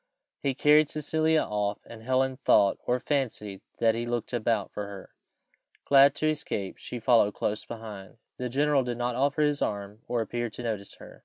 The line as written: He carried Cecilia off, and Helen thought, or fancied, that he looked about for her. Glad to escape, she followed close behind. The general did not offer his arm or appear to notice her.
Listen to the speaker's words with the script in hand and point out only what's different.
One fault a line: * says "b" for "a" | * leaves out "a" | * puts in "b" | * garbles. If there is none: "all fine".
all fine